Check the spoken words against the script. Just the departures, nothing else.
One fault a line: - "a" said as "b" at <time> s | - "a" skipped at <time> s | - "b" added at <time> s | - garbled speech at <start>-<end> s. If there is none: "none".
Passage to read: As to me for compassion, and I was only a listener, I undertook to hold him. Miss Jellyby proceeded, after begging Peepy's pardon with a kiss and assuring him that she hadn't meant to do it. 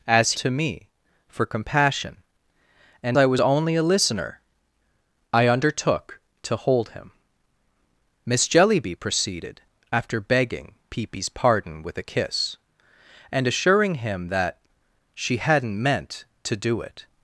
none